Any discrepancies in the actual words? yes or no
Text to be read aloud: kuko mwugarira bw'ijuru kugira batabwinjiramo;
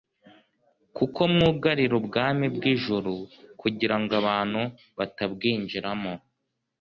yes